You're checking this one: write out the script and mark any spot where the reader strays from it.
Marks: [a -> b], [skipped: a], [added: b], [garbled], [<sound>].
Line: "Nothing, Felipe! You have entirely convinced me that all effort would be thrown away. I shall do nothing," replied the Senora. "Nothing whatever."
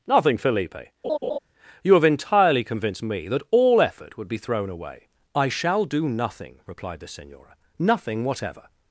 "Nothing, Felipe! [laugh] You have entirely convinced me that all effort would be thrown away. I shall do nothing," replied the Senora. "Nothing whatever."